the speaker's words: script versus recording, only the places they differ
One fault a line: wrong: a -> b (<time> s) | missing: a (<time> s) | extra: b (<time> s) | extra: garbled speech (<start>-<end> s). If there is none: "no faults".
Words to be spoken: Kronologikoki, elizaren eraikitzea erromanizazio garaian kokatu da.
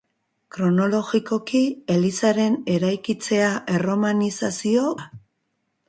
missing: garaian kokatu (4.9 s)